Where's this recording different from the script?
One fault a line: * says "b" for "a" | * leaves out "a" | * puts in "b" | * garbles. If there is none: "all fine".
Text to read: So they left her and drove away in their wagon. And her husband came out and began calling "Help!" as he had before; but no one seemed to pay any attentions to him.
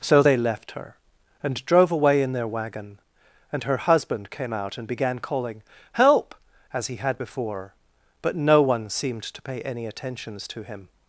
all fine